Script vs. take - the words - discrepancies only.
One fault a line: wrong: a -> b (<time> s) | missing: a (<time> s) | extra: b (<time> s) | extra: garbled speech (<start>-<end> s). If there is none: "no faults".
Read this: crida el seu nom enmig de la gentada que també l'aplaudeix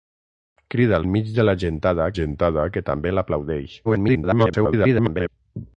missing: seu nom (1.1 s)
extra: gentada (2.2 s)
extra: garbled speech (3.8-5.3 s)